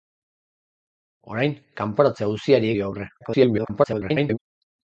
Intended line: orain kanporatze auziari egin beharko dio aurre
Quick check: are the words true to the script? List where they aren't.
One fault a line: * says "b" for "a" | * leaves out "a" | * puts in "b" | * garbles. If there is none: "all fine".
* leaves out "egin beharko"
* garbles